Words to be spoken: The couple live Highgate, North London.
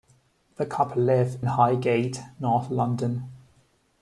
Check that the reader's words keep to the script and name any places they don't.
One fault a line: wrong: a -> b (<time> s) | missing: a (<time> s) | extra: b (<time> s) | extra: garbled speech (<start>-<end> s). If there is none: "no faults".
no faults